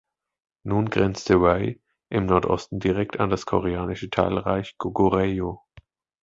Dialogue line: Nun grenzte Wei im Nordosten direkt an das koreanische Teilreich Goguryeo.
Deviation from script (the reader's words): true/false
false